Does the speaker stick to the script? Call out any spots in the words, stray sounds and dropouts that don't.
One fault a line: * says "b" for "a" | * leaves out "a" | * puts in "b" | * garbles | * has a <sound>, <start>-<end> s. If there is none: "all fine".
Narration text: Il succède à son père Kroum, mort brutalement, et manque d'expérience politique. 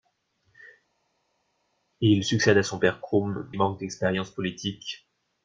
* leaves out "mort brutalement et"